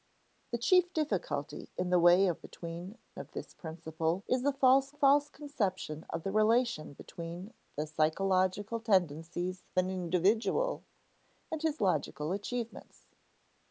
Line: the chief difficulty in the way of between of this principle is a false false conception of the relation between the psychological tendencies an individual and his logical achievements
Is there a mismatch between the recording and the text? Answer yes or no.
no